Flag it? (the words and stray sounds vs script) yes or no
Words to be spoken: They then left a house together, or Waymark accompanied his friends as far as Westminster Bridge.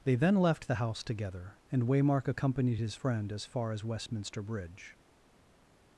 yes